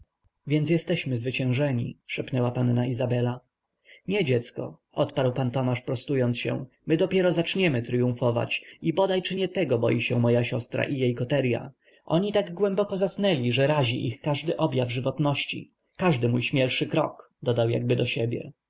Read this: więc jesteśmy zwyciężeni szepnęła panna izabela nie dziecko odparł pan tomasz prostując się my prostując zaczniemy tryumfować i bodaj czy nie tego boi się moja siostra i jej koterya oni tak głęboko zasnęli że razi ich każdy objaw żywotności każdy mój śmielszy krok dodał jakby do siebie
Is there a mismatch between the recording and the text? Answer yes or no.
yes